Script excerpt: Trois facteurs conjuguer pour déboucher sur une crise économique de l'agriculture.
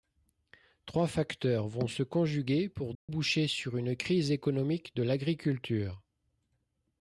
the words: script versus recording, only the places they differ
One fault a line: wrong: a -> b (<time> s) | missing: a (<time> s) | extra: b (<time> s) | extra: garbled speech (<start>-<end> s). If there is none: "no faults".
extra: vont se (1.7 s)